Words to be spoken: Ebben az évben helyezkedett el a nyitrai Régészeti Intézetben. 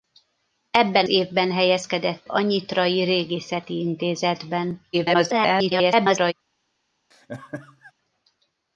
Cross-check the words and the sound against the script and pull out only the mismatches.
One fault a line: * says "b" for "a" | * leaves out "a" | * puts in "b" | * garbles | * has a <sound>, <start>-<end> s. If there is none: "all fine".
* leaves out "az"
* leaves out "el"
* garbles
* has a laugh, 7.1-7.9 s